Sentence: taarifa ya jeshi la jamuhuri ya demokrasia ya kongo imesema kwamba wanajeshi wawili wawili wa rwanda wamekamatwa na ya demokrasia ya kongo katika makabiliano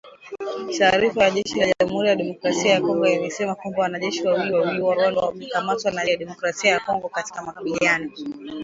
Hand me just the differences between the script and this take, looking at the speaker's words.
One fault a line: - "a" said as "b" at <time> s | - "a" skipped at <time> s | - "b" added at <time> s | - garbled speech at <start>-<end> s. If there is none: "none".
none